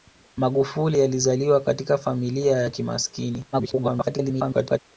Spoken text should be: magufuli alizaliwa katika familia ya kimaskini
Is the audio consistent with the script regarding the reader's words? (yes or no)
no